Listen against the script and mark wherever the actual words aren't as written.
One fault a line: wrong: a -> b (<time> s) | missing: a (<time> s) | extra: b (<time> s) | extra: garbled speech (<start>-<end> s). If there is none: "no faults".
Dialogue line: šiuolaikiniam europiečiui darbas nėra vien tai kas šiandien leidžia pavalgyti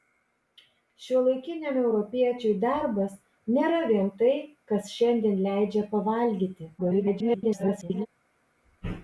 extra: garbled speech (6.8-8.1 s)